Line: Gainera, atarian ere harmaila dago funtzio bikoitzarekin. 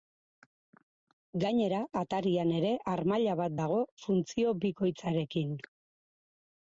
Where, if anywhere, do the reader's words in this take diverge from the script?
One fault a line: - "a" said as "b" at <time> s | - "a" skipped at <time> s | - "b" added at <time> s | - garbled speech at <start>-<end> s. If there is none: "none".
- "bat" added at 3.4 s